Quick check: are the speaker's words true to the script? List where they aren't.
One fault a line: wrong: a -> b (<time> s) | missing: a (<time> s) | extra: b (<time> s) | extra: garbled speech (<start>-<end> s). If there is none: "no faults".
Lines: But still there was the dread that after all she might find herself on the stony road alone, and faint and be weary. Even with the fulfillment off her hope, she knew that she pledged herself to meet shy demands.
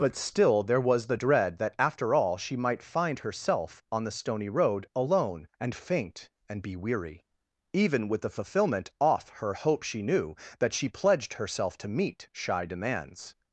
no faults